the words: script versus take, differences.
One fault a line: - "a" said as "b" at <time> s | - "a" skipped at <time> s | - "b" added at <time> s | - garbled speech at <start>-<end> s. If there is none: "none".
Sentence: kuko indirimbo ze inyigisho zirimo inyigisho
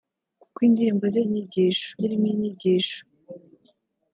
none